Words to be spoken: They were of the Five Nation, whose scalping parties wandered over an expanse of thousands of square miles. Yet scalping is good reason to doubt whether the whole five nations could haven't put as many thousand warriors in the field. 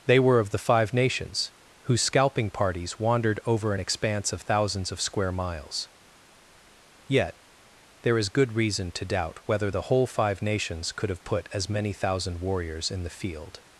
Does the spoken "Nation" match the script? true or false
false